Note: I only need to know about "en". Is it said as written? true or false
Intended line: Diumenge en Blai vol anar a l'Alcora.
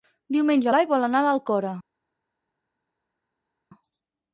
false